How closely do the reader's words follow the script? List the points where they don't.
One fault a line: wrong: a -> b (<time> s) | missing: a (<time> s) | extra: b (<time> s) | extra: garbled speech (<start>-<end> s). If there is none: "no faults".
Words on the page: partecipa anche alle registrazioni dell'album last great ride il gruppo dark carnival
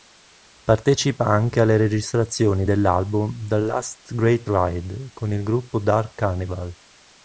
extra: the (3.5 s)
extra: con (5.1 s)